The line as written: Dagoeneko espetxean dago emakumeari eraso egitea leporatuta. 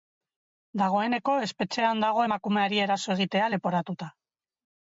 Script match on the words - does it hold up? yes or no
yes